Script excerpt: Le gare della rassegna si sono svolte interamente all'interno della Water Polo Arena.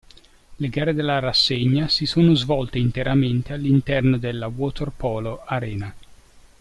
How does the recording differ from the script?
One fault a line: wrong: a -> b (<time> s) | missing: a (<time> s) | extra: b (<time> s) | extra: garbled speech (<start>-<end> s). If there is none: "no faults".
no faults